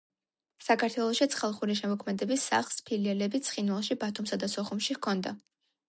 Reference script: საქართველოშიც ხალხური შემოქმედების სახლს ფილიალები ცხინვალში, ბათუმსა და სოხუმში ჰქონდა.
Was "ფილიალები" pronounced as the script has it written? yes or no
yes